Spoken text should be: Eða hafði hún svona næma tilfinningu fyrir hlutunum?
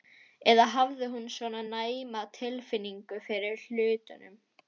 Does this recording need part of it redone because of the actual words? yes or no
no